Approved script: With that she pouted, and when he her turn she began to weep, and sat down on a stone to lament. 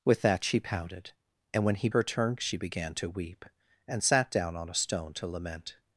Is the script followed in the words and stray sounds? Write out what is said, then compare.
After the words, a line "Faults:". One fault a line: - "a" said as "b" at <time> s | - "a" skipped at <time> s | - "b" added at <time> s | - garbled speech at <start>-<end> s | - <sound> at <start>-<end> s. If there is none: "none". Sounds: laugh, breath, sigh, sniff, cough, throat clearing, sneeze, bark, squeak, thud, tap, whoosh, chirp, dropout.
With that she pouted, and when he her turn she began to weep, and sat down on a stone to lament.
Faults:
none